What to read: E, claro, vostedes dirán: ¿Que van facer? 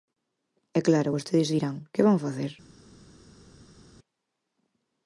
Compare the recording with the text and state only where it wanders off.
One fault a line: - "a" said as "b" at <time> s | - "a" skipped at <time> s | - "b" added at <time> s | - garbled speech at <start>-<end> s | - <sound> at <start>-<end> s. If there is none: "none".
none